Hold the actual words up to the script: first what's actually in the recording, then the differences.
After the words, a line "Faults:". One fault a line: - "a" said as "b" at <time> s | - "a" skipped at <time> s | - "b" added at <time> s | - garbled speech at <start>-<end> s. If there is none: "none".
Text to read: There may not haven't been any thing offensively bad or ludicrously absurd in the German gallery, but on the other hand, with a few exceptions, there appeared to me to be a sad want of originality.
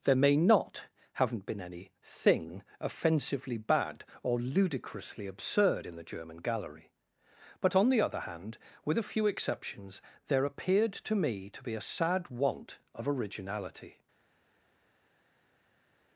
There may not haven't been any thing offensively bad or ludicrously absurd in the German gallery, but on the other hand, with a few exceptions, there appeared to me to be a sad want of originality.
Faults:
none